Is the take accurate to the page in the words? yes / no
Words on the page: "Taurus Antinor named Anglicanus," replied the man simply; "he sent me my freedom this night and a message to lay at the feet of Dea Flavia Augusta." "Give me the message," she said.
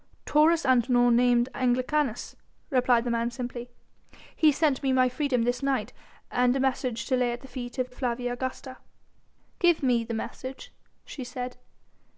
no